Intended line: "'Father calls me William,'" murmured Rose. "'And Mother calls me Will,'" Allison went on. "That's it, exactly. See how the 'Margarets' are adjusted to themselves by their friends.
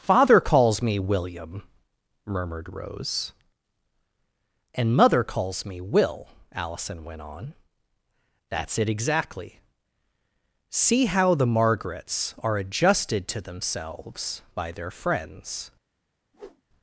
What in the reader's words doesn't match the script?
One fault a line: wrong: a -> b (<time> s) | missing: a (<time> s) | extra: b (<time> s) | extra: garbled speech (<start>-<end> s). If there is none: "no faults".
no faults